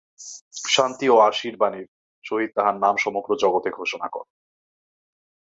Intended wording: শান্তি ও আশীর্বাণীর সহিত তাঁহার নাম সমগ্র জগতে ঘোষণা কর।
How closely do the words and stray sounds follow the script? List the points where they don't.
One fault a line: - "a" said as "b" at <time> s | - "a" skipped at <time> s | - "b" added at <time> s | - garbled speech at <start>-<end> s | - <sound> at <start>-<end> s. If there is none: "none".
none